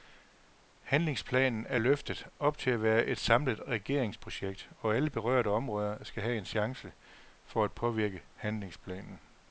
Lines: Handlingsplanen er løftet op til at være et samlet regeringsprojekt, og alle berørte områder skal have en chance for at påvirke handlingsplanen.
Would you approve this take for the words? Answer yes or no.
yes